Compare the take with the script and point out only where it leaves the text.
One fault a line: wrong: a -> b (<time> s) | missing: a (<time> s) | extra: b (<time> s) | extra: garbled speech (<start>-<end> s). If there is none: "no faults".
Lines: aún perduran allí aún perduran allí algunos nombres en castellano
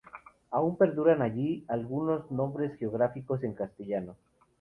missing: aún perduran allí (1.6 s)
extra: geográficos (2.8 s)